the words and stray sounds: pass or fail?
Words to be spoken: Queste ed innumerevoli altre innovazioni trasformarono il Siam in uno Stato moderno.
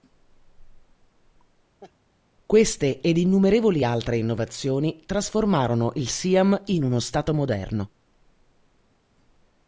fail